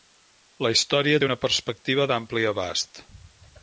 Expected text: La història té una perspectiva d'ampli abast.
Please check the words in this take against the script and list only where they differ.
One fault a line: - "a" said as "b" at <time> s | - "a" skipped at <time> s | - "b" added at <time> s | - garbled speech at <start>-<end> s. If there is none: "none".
none